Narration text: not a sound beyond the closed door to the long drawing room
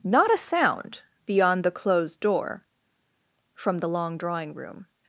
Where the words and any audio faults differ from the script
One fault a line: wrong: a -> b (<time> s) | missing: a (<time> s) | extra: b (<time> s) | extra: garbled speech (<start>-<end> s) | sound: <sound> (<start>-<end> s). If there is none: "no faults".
wrong: to -> from (3.5 s)